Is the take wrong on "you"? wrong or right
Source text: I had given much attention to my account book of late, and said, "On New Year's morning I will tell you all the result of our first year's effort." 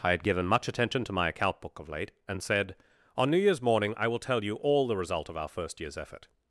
right